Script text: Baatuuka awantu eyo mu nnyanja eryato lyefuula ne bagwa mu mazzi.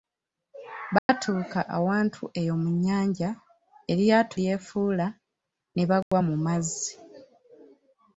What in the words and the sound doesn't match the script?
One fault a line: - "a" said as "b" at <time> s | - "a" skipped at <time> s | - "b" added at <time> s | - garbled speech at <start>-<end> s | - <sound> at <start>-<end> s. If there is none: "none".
- dropout at 1.0-1.1 s
- dropout at 6.0-6.1 s